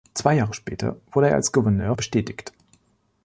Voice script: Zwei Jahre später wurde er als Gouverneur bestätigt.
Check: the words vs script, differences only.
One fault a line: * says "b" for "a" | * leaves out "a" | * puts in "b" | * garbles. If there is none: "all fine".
all fine